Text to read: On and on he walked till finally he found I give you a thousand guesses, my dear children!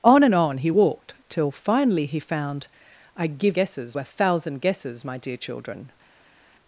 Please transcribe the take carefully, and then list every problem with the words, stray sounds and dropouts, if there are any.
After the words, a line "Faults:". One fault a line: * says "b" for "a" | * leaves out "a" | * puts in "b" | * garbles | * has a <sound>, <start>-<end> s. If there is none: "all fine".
On and on he walked till finally he found I give guesses a thousand guesses, my dear children!
Faults:
* says "guesses" for "you"